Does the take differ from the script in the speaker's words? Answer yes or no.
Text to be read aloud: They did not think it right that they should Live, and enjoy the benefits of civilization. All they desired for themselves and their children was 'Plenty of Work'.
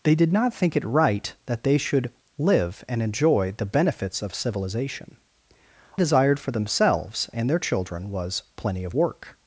yes